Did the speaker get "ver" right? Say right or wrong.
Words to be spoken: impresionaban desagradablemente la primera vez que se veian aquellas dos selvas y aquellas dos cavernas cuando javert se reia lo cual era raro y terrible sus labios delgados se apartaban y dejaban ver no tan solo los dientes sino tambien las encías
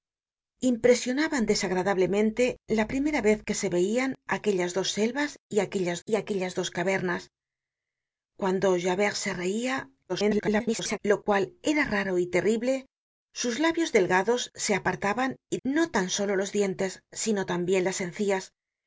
wrong